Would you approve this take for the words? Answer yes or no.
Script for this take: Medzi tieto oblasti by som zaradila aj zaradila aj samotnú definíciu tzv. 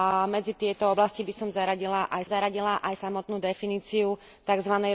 yes